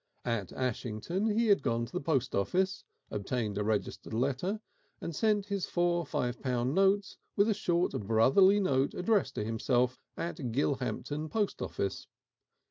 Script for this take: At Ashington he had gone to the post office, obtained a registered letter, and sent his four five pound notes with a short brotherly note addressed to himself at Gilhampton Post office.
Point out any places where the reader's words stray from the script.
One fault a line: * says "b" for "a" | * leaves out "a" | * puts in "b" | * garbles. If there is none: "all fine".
all fine